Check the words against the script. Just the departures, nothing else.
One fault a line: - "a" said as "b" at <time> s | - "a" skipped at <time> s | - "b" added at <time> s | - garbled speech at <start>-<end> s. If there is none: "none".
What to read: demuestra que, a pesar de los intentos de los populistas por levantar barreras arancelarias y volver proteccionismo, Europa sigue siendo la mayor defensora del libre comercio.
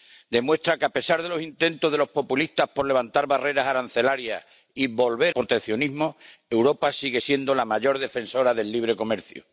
none